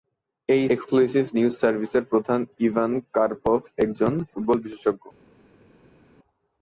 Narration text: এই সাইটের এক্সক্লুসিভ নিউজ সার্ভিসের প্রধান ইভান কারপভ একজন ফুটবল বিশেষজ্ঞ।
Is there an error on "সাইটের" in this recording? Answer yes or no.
yes